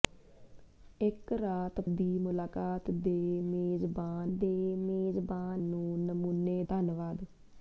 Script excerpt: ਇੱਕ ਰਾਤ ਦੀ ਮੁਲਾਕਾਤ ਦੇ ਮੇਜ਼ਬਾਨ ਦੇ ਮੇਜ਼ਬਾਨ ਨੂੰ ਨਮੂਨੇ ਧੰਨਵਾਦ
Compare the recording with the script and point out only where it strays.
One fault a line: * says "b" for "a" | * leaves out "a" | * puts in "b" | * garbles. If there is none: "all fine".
all fine